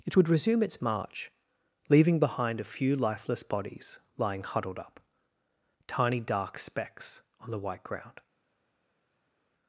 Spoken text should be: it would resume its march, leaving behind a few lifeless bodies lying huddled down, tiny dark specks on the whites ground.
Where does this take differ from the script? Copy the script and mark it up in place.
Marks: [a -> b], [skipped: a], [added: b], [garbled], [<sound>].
it would resume its march, leaving behind a few lifeless bodies lying huddled [down, -> up] tiny dark specks on the [whites -> white] ground.